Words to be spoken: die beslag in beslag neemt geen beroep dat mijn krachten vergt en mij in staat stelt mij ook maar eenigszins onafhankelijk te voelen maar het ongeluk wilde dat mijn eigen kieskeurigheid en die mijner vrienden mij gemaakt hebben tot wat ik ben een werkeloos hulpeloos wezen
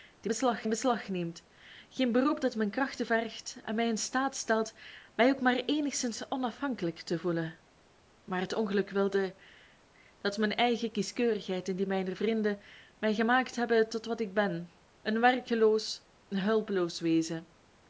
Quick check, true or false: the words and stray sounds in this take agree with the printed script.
true